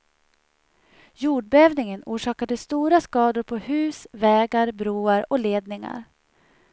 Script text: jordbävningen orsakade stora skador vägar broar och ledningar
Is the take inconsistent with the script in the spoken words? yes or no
yes